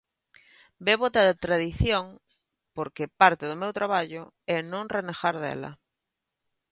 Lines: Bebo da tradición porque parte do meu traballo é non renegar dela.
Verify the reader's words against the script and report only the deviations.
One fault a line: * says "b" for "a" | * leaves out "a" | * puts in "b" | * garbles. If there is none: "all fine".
all fine